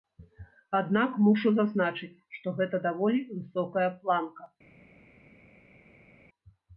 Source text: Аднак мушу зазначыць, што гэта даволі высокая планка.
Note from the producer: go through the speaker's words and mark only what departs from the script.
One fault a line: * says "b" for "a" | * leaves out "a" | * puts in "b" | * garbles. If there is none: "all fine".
all fine